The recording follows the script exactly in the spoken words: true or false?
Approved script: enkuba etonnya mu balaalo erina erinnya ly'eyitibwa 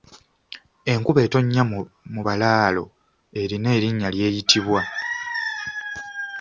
true